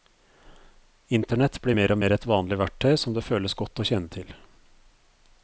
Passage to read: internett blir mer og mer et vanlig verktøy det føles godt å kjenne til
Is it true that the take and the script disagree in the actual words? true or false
true